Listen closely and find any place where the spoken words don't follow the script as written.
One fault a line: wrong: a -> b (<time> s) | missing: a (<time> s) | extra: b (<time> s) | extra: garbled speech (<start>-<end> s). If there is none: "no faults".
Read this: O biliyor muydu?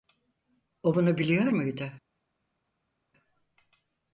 extra: bunu (0.9 s)